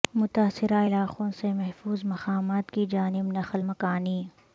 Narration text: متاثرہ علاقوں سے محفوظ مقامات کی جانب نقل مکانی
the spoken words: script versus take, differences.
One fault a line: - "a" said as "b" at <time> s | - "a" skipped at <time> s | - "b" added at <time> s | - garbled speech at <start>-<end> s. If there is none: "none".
none